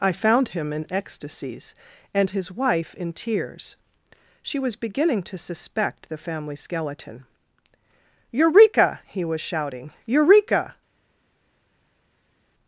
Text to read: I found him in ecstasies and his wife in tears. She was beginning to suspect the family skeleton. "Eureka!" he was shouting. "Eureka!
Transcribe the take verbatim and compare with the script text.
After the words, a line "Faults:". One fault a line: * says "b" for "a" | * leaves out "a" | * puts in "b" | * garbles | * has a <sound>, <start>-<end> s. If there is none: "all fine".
I found him in ecstasies and his wife in tears. She was beginning to suspect the family skeleton. "Eureka!" he was shouting. "Eureka!
Faults:
all fine